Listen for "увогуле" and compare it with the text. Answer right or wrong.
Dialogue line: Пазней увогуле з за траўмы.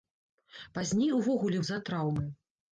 right